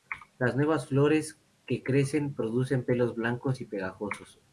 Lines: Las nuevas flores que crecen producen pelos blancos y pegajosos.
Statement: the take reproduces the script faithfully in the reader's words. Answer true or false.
true